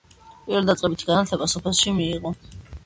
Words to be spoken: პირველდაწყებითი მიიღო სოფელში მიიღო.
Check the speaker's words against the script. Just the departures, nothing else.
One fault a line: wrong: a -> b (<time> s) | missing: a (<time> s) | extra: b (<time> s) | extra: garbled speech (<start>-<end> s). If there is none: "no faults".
wrong: მიიღო -> განათლება (1.1 s)